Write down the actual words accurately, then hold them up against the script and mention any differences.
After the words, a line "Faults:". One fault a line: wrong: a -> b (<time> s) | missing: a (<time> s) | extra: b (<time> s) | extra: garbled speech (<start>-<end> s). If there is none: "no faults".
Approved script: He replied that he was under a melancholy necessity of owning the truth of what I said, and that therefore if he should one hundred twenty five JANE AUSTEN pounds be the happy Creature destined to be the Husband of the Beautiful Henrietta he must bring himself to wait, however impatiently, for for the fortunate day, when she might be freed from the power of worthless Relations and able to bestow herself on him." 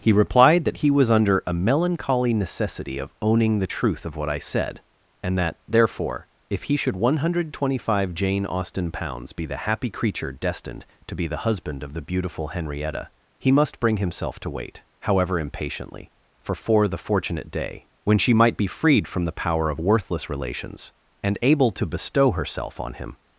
He replied that he was under a melancholy necessity of owning the truth of what I said, and that therefore if he should one hundred twenty five JANE AUSTEN pounds be the happy Creature destined to be the Husband of the Beautiful Henrietta he must bring himself to wait, however impatiently, for for the fortunate day, when she might be freed from the power of worthless Relations and able to bestow herself on him."
Faults:
no faults